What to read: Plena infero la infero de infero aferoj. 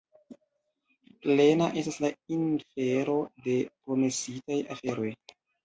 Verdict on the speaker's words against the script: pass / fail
fail